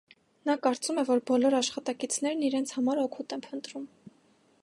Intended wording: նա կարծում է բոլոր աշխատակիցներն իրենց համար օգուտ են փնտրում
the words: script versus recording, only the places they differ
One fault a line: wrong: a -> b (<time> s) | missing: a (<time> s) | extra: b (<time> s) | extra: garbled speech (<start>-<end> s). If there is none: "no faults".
extra: որ (1.1 s)